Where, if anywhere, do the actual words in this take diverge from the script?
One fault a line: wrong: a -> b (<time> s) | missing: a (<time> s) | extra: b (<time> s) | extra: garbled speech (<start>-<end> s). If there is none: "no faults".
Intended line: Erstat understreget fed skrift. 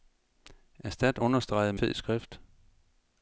no faults